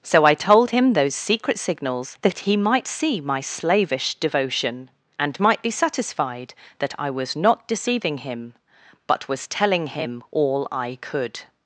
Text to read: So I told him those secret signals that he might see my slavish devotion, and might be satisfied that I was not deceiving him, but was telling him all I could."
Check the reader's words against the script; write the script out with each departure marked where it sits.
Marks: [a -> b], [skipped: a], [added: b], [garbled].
So I told him those secret signals that he might see my slavish devotion, and might be satisfied that I was not deceiving him, but was telling him all I could."